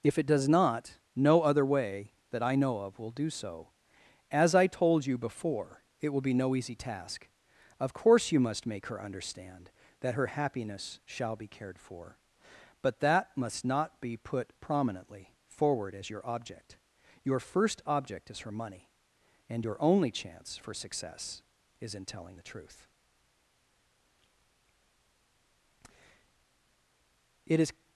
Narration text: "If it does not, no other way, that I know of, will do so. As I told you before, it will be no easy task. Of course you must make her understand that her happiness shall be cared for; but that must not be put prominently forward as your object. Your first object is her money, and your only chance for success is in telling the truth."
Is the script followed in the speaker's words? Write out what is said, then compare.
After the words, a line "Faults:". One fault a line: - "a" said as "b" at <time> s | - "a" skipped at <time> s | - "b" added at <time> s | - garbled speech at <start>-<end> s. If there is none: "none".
"If it does not, no other way, that I know of, will do so. As I told you before, it will be no easy task. Of course you must make her understand that her happiness shall be cared for; but that must not be put prominently forward as your object. Your first object is her money, and your only chance for success is in telling the truth." "It is
Faults:
- "It is" added at 27.5 s